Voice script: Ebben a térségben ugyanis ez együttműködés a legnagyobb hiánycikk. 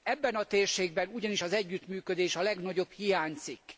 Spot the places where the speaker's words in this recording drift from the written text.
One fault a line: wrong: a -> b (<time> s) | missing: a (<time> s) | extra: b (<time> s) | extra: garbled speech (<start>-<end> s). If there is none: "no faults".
wrong: ez -> az (1.4 s)